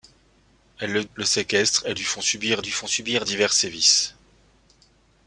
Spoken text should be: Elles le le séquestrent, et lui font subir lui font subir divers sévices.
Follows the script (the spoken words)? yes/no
yes